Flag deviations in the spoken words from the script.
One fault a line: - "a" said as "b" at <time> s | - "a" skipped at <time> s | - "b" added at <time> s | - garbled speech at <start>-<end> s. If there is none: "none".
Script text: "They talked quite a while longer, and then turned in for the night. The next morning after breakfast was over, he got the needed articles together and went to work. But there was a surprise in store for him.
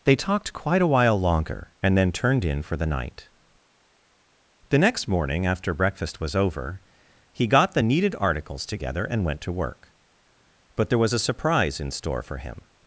none